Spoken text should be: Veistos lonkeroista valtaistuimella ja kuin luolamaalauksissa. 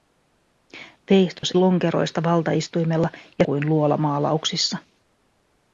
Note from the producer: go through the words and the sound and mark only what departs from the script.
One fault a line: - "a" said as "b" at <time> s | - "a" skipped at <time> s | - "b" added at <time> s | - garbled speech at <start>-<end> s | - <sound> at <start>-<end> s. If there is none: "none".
- dropout at 1.4-1.4 s